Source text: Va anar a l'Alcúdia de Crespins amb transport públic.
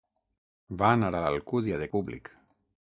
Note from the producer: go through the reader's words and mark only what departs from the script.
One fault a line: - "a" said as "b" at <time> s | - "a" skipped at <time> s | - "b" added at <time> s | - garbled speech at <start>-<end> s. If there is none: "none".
- "Crespins amb transport" skipped at 1.9 s